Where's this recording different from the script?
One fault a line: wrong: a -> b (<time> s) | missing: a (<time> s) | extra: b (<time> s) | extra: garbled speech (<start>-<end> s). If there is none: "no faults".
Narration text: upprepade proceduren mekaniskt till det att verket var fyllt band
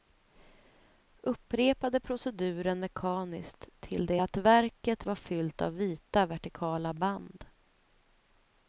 extra: av vita vertikala (5.6 s)